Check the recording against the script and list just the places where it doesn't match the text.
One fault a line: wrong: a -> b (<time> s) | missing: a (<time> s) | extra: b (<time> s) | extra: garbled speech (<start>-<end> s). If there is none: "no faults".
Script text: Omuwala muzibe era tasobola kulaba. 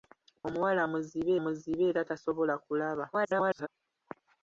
extra: muzibe (1.4 s)
extra: garbled speech (3.1-3.7 s)